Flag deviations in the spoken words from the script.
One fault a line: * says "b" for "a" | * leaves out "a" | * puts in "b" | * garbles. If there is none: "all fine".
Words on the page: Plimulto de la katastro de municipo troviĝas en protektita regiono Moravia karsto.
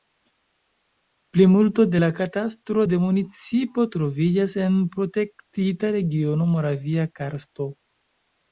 all fine